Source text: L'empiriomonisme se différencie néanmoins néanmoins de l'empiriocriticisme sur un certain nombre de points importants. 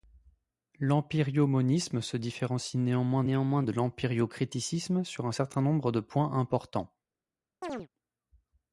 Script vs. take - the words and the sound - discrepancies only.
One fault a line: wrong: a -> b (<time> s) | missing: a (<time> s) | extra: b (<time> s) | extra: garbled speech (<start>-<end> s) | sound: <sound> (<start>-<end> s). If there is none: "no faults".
sound: chirp (7.6-7.9 s)